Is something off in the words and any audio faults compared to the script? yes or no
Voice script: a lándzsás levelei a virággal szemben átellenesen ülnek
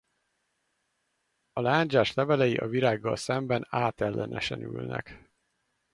no